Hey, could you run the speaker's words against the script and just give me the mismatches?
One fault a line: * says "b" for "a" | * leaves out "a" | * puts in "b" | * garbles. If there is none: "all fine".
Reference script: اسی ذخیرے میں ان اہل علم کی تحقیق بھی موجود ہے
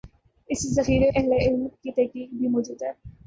* leaves out "میں ان"